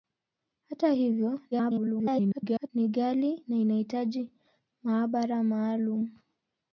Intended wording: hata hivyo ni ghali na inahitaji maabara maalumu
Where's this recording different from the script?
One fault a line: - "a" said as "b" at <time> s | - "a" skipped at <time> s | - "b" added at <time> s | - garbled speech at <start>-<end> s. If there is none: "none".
- garbled speech at 1.5-2.7 s